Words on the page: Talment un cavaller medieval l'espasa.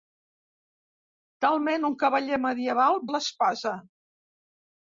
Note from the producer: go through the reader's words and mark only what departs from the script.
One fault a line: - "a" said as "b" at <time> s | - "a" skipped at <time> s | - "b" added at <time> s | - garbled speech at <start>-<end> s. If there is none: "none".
none